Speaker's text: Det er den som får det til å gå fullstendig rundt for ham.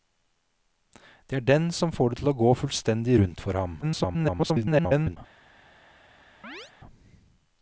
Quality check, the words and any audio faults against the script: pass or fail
fail